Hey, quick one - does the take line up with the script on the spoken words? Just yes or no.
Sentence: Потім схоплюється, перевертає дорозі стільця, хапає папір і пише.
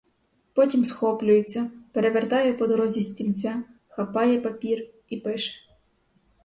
no